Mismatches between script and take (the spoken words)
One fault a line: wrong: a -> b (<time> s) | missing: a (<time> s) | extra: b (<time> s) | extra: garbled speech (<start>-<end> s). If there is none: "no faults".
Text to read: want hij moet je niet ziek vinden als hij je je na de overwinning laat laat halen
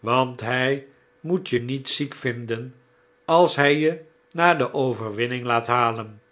missing: je (4.0 s)
missing: laat (5.7 s)